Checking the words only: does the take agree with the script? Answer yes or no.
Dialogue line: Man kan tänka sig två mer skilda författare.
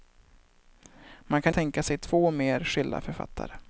yes